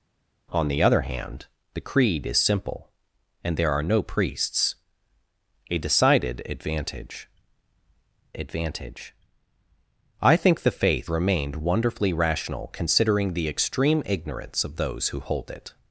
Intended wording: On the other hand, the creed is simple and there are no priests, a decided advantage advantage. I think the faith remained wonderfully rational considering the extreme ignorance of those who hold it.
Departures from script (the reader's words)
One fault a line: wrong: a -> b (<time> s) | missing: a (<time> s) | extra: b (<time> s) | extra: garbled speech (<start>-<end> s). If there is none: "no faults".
no faults